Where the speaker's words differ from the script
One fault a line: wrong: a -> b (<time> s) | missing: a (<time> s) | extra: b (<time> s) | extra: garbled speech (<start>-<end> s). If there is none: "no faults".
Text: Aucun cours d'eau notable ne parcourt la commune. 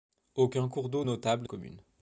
missing: ne parcourt la (1.5 s)